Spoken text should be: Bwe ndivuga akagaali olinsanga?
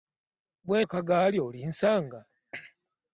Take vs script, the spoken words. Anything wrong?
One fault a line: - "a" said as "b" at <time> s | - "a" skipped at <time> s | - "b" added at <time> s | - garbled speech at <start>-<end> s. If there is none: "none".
- "ndivuga" skipped at 0.8 s